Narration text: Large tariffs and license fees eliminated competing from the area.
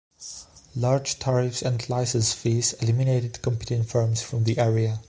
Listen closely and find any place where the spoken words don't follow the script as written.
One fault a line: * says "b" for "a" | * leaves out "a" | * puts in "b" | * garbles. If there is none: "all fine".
* puts in "firms"